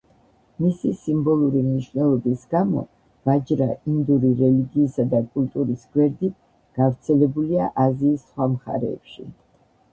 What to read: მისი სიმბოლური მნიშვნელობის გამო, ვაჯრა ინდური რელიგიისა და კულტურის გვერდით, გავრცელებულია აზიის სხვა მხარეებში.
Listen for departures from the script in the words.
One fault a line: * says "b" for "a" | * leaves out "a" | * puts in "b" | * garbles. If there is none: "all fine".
all fine